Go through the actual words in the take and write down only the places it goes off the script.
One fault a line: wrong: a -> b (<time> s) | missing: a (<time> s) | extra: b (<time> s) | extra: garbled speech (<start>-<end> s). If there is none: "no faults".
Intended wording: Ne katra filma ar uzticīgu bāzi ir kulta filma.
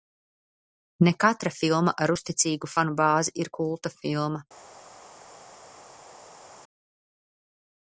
extra: fanu (2.7 s)